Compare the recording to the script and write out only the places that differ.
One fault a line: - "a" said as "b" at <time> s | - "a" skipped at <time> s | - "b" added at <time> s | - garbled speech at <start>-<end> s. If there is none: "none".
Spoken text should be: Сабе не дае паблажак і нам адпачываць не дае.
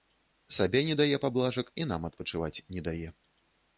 none